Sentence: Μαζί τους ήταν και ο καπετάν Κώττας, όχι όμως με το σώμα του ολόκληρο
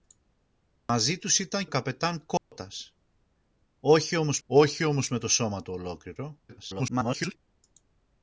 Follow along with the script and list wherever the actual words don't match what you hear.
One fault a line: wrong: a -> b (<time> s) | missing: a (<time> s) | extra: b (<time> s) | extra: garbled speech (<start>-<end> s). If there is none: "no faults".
missing: και (1.6 s)
extra: όχι όμως (4.4 s)
extra: garbled speech (6.5-7.4 s)